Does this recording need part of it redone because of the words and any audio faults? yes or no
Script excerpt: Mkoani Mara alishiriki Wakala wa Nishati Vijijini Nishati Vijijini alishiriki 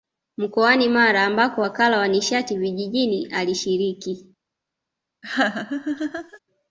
yes